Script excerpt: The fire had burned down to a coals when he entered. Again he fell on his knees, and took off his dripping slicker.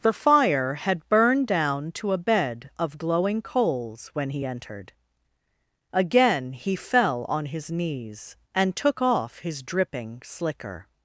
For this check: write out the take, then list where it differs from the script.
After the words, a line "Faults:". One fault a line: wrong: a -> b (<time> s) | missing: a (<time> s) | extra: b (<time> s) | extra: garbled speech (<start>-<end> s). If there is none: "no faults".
The fire had burned down to a bed of glowing coals when he entered. Again he fell on his knees, and took off his dripping slicker.
Faults:
extra: bed of glowing (2.2 s)